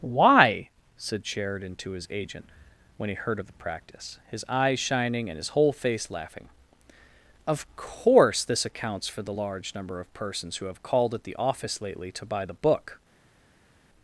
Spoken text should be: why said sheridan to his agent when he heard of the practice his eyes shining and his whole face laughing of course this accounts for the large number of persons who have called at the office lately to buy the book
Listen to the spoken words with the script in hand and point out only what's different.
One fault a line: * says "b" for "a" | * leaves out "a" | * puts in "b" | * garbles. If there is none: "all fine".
all fine